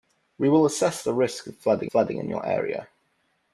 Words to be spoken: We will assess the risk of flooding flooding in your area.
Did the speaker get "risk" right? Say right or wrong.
right